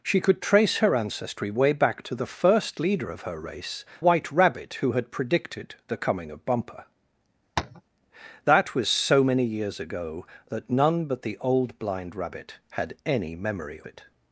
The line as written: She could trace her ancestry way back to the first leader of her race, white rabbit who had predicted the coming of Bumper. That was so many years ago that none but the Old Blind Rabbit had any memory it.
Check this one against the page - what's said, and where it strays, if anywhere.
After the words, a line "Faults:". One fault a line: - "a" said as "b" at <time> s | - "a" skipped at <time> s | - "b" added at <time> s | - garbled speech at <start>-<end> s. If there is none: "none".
She could trace her ancestry way back to the first leader of her race, white rabbit who had predicted the coming of Bumper. That was so many years ago that none but the Old Blind Rabbit had any memory it.
Faults:
none